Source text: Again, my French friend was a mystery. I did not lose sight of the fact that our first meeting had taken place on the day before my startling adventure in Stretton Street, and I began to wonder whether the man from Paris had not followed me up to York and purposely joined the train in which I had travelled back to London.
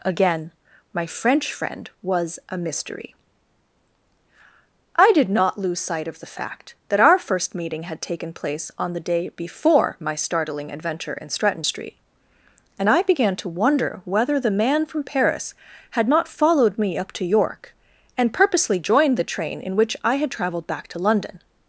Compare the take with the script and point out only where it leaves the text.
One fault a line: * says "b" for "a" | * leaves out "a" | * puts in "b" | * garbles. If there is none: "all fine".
all fine